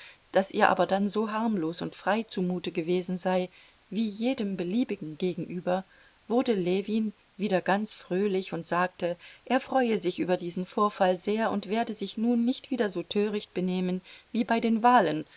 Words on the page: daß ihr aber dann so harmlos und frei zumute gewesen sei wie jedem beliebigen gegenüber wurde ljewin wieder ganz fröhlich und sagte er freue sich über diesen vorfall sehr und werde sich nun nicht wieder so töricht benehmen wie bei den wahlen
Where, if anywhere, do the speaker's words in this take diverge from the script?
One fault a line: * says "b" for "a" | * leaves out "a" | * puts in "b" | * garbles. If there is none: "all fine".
all fine